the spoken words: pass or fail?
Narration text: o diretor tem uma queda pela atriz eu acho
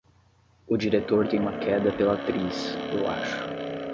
pass